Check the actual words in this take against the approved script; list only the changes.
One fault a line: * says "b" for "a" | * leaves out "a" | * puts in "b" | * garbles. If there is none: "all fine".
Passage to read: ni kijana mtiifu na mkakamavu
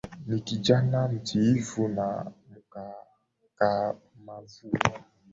all fine